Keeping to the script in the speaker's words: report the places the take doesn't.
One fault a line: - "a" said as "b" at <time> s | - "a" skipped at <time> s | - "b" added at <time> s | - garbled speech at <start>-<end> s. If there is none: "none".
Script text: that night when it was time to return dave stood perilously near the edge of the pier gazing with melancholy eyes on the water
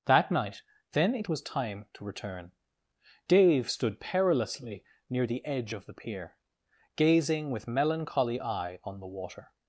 - "when" said as "then" at 0.9 s
- "eyes" said as "eye" at 8.4 s